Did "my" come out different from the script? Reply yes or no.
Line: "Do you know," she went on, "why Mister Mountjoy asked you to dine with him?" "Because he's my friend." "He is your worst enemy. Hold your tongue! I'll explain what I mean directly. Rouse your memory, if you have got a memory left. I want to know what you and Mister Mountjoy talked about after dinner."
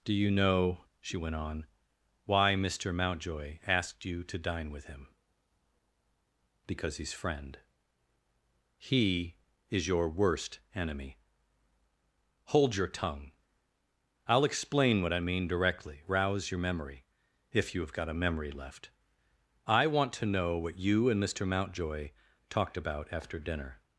yes